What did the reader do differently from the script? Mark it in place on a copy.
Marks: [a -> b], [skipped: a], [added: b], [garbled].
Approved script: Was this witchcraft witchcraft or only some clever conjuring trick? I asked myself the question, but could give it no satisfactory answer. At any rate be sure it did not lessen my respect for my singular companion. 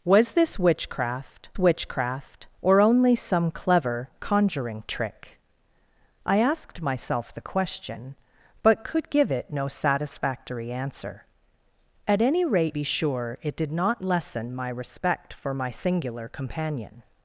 Was this witchcraft witchcraft or only some clever conjuring trick? I asked myself the question, but could give it no satisfactory answer. At any rate be sure it did not lessen my respect for my singular companion.